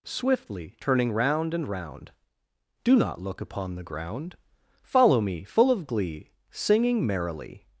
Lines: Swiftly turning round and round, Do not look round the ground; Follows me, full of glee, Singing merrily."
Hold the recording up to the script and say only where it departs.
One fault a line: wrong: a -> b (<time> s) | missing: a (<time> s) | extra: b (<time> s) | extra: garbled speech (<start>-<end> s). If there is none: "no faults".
wrong: round -> upon (3.4 s)
wrong: Follows -> Follow (4.8 s)